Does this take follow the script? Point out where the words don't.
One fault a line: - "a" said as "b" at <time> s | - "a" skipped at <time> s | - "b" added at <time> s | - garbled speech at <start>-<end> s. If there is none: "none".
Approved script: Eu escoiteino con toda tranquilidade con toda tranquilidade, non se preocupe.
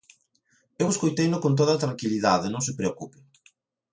- "con toda tranquilidade" skipped at 2.5 s